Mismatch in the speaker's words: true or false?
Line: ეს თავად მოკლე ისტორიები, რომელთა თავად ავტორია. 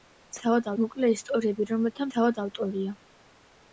false